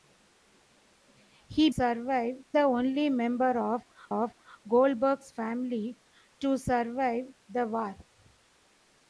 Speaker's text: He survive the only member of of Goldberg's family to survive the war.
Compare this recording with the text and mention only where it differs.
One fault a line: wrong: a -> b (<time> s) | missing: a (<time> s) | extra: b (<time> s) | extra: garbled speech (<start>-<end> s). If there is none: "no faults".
no faults